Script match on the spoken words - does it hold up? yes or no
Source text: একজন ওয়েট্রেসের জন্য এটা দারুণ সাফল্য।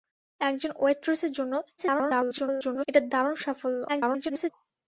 no